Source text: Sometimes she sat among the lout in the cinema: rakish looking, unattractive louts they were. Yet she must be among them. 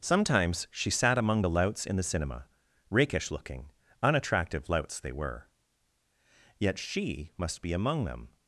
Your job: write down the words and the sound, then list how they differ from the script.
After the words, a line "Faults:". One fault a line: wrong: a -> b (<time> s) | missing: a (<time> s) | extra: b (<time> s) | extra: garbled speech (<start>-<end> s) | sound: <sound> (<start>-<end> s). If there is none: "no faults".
Sometimes she sat among the louts in the cinema: rakish looking, unattractive louts they were. Yet she must be among them.
Faults:
wrong: lout -> louts (1.5 s)